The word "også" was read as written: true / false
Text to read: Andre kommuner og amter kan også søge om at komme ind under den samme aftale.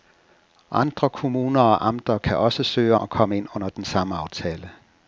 true